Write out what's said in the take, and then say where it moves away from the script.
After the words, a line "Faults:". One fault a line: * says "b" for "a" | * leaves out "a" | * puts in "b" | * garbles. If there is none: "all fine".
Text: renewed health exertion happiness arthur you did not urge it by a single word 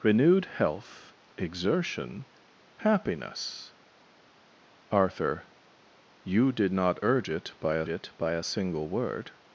renewed health exertion happiness arthur you did not urge it by a it by a single word
Faults:
* puts in "it by a"